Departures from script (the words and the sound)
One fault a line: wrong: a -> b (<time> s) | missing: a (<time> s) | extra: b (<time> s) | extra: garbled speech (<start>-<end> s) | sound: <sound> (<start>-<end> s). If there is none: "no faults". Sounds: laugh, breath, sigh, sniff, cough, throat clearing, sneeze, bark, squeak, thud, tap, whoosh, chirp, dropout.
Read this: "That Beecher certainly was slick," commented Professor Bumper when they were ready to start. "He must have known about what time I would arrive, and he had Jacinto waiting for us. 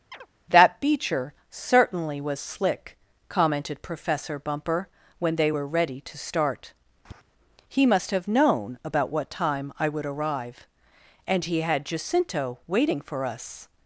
sound: chirp (0.1-0.3 s)
sound: tap (7.0-7.2 s)